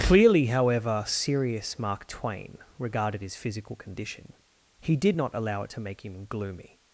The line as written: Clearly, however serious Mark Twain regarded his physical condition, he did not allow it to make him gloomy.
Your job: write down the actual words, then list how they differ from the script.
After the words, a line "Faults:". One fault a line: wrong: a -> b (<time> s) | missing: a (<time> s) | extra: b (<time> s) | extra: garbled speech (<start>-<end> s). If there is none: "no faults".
Clearly, however serious Mark Twain regarded his physical condition, he did not allow it to make him gloomy.
Faults:
no faults